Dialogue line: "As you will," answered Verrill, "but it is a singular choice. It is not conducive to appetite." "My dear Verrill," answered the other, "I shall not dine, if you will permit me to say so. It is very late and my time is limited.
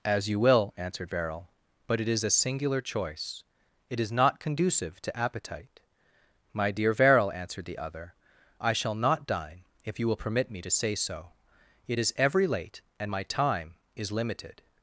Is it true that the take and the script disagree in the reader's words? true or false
true